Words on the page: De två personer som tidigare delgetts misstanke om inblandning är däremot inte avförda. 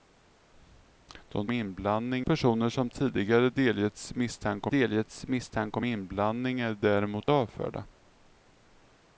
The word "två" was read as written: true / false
false